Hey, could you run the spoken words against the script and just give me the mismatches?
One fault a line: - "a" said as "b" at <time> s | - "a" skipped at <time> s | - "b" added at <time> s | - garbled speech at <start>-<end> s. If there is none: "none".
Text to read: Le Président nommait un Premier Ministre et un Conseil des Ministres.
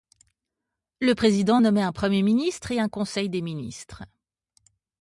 none